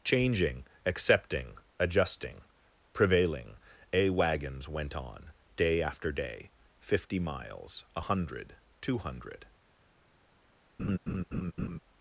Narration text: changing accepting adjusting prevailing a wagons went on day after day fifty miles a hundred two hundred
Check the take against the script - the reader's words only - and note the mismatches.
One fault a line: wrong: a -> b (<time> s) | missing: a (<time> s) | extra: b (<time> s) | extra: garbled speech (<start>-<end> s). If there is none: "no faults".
no faults